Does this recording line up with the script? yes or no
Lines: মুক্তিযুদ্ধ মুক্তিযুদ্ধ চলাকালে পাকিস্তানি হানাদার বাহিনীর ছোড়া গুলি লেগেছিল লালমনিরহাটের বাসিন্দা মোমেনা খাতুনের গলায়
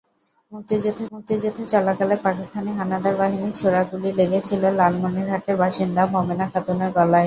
yes